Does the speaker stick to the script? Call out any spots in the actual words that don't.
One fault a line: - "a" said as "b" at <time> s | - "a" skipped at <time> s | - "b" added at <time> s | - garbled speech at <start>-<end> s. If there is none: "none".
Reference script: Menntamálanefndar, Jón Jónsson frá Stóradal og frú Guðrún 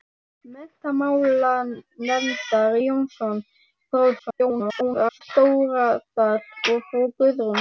- "Jón" skipped at 2.7 s
- garbled speech at 4.2-5.2 s